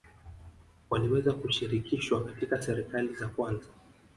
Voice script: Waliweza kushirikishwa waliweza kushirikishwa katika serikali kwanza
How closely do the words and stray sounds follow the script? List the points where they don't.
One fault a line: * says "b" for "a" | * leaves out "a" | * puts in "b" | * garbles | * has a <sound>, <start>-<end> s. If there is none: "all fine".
* leaves out "waliweza kushirikishwa"
* puts in "za"